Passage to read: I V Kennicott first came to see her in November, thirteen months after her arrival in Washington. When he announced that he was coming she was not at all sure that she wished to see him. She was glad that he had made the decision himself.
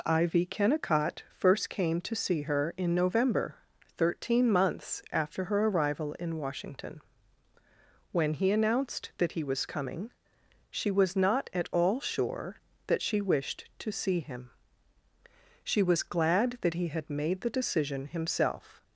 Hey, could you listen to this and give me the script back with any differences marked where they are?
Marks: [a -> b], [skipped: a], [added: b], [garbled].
I V Kennicott first came to see her in November, thirteen months after her arrival in Washington. When he announced that he was coming she was not at all sure that she wished to see him. She was glad that he had made the decision himself.